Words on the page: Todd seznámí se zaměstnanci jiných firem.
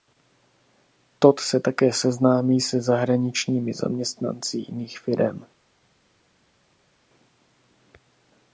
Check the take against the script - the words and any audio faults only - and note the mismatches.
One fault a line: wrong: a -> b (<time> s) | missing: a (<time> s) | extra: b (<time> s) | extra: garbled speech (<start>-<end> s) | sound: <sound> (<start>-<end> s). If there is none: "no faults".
extra: se také (1.4 s)
extra: zahraničními (2.8 s)